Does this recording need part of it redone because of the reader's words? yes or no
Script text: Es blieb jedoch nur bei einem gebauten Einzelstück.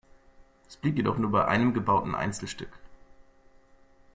no